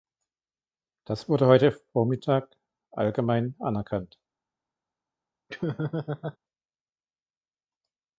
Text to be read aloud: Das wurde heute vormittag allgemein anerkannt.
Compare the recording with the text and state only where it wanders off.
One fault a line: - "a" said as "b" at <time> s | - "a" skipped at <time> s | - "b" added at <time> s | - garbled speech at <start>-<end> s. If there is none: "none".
none